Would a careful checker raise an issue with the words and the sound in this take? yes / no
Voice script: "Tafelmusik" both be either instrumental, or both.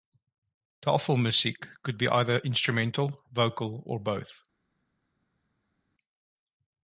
yes